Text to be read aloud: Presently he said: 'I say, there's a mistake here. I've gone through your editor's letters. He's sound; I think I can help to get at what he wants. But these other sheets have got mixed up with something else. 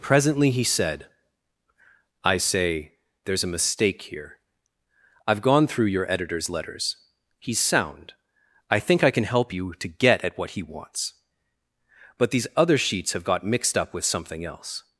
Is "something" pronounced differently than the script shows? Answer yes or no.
no